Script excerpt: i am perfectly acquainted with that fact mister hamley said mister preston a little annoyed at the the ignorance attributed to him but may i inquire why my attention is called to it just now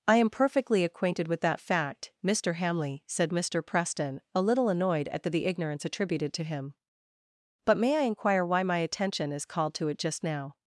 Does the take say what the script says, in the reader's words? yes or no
yes